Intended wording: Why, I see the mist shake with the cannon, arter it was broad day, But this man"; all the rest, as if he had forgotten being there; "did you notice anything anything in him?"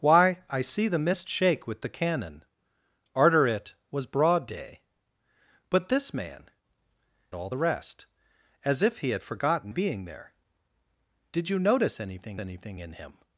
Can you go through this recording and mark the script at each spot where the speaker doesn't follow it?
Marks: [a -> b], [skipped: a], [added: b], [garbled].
Why, I see the mist shake with the cannon, arter it was broad day, But this man"; all the rest, as if he had forgotten being there; "did you notice anything anything in him?"